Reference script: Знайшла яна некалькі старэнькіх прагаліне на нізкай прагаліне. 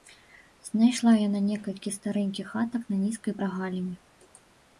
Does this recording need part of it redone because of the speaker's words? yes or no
yes